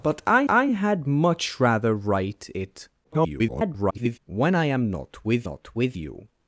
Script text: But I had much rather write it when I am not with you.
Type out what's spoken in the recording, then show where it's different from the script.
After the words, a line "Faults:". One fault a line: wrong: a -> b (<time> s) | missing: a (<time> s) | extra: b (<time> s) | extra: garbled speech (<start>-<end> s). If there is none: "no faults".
But I I had much rather write it [garbled] when I am not with not with you.
Faults:
extra: I (0.5 s)
extra: garbled speech (3.0-4.2 s)
extra: not with (5.4 s)